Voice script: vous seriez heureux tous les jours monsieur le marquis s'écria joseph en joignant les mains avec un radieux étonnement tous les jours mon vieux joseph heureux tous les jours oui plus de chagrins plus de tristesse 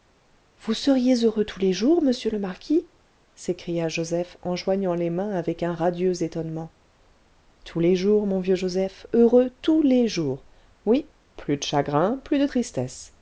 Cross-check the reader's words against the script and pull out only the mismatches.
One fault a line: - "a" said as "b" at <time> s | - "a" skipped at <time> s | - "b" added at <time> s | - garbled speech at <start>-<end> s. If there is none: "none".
none